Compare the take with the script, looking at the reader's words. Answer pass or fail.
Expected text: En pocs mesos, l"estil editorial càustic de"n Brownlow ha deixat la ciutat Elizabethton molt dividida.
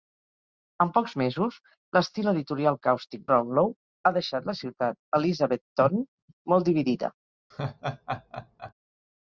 fail